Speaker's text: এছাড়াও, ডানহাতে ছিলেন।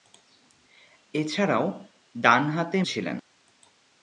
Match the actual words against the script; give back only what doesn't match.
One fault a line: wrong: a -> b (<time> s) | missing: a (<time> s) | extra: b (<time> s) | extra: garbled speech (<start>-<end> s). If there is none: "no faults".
no faults